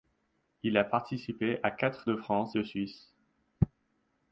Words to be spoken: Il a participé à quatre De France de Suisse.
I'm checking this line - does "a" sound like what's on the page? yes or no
yes